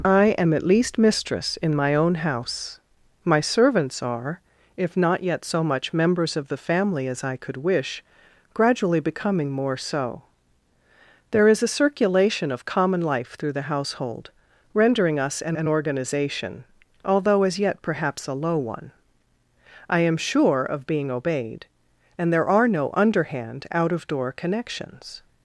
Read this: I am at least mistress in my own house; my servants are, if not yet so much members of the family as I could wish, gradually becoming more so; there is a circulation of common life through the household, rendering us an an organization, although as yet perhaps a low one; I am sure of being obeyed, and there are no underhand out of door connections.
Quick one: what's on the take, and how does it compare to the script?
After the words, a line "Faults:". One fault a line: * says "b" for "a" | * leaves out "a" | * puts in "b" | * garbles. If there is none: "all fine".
I am at least mistress in my own house; my servants are, if not yet so much members of the family as I could wish, gradually becoming more so; there is a circulation of common life through the household, rendering us an an organization, although as yet perhaps a low one; I am sure of being obeyed, and there are no underhand out of door connections.
Faults:
all fine